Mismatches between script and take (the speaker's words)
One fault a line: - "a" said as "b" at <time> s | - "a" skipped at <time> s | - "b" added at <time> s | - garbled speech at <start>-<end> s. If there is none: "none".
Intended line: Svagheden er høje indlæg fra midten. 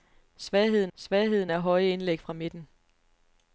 - "svagheden" added at 1.0 s